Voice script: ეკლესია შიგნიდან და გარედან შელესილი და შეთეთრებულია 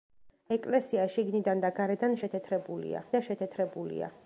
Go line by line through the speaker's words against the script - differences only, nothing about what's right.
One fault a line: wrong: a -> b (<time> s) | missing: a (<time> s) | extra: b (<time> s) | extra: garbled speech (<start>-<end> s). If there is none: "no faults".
wrong: შელესილი -> შეთეთრებულია (2.2 s)